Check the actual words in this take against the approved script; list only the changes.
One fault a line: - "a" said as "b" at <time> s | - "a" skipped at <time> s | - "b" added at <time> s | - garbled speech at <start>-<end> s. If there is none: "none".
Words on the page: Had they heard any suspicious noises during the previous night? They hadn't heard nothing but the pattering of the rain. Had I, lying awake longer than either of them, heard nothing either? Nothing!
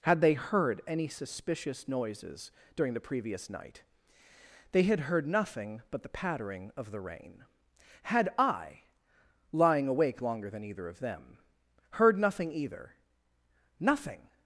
- "hadn't" said as "had" at 4.8 s